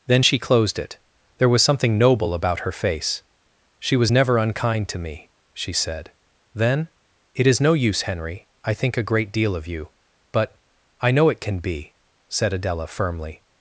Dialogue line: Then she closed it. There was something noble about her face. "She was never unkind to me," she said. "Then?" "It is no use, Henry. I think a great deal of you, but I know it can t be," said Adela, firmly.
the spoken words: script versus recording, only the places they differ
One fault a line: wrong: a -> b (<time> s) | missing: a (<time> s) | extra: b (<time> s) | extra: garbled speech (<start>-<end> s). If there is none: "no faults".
missing: t (11.6 s)